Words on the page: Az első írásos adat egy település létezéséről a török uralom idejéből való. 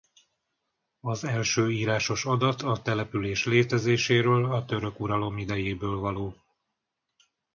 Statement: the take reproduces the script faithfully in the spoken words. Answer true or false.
false